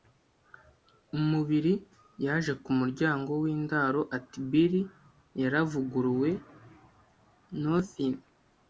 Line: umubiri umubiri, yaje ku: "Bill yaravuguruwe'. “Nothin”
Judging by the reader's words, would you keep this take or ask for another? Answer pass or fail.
fail